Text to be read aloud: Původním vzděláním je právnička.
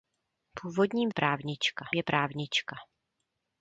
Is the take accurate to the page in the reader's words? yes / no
no